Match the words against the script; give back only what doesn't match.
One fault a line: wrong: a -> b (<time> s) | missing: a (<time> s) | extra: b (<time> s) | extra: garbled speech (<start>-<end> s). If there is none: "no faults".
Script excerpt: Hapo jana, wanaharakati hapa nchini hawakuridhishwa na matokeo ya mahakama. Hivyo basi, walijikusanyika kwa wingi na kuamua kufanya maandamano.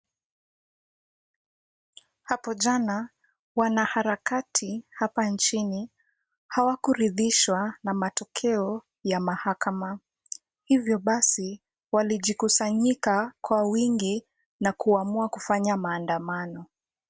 no faults